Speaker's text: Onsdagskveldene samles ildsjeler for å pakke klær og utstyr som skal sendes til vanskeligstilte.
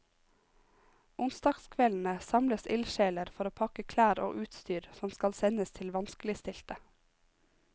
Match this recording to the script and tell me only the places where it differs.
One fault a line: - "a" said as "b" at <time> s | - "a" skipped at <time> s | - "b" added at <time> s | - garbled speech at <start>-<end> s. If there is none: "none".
none